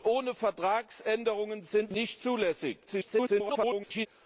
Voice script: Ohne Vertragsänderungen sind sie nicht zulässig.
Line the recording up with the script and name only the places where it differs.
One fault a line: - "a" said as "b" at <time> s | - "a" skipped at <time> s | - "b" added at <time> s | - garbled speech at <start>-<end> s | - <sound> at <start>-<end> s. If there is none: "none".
- "sie" skipped at 1.9 s
- garbled speech at 2.9-4.1 s